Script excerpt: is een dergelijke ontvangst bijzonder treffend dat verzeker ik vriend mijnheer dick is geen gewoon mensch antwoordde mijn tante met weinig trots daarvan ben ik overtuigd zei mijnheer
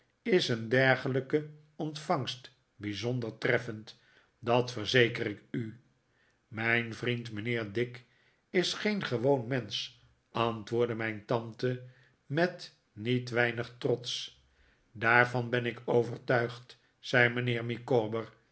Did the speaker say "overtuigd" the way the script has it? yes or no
yes